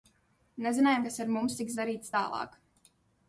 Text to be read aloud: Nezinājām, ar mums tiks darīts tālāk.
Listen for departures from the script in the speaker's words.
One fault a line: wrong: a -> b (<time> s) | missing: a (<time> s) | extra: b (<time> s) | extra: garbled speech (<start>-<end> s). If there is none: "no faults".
extra: kas (1.1 s)